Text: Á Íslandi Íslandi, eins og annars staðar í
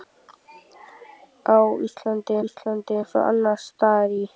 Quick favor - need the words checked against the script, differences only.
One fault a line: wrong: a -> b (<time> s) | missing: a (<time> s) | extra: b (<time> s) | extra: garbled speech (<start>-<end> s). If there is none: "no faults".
no faults